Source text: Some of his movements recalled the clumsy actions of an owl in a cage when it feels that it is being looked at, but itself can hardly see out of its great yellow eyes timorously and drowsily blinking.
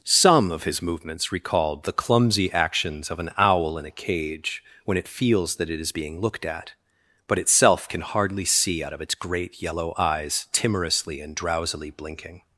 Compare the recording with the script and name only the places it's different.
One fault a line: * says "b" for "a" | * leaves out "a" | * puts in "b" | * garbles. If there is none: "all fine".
all fine